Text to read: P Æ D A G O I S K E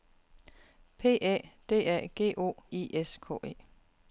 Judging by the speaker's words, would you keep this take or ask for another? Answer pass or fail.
pass